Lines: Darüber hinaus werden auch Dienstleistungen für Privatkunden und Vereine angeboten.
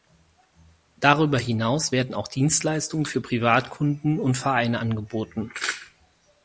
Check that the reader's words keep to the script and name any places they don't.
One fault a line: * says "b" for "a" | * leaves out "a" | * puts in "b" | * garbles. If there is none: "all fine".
all fine